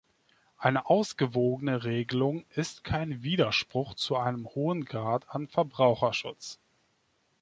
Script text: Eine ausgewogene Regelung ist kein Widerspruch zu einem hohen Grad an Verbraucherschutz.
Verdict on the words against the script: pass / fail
pass